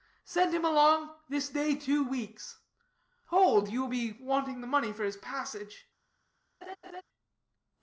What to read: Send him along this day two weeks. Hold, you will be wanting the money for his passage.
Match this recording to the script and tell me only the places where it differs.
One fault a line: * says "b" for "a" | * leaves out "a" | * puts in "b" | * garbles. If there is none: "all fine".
all fine